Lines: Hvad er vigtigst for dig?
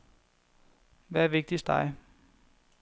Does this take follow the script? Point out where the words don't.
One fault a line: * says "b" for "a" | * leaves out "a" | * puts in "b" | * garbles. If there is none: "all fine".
* leaves out "for"